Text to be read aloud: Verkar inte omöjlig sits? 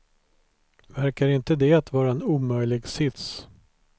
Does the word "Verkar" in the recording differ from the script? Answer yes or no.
no